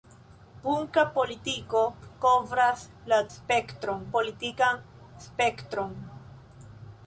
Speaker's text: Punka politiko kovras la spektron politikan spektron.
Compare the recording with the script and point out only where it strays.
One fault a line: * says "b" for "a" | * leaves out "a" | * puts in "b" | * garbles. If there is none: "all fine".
all fine